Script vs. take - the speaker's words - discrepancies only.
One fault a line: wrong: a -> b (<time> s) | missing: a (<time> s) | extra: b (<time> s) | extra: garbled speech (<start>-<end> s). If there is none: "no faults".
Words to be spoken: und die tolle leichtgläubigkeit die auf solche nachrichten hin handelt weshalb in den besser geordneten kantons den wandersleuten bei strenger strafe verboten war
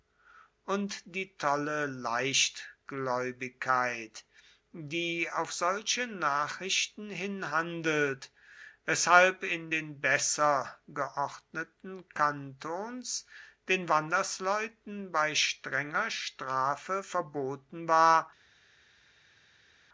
no faults